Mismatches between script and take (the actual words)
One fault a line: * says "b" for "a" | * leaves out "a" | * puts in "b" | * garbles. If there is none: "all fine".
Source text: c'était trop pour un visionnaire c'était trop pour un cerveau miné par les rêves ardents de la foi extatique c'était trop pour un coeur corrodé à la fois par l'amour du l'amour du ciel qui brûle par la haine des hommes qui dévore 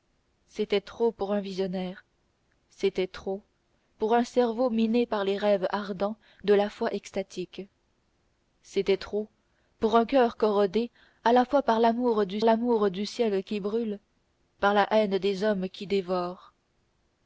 all fine